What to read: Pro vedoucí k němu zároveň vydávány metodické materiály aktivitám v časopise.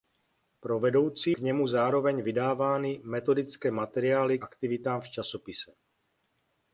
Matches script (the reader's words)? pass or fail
pass